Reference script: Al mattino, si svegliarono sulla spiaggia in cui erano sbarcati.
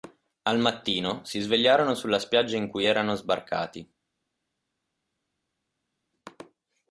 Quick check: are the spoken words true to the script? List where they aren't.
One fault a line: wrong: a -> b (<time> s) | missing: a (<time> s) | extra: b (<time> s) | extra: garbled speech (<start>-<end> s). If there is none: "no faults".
no faults